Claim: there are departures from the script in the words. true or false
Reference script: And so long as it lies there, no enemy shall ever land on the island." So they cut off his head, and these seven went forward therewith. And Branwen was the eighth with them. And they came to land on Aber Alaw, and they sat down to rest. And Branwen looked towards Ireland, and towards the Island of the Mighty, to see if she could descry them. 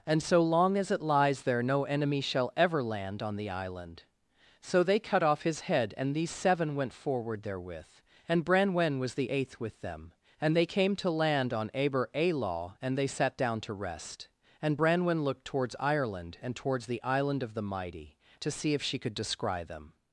false